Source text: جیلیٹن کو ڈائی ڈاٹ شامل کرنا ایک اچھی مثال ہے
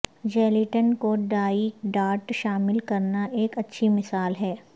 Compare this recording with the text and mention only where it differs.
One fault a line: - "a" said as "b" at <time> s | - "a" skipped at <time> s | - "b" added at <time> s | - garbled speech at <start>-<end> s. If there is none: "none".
none